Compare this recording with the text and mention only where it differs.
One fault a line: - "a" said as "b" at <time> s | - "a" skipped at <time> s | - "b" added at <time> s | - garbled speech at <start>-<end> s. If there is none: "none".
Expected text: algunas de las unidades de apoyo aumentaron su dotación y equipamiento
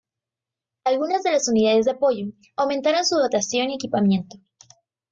none